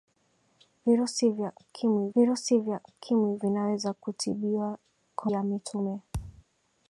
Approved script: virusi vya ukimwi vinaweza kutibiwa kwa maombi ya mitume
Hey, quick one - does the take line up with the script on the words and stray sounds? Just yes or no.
no